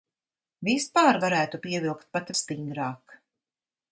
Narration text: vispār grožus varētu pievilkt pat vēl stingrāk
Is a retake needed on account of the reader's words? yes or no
yes